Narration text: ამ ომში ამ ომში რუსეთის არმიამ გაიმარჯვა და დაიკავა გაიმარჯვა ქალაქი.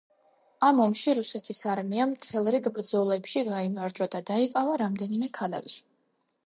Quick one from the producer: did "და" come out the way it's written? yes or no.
yes